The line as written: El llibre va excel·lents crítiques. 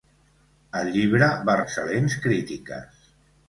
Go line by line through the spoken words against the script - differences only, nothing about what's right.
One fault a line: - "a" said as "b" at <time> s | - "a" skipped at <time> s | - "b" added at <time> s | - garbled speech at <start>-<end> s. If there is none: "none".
none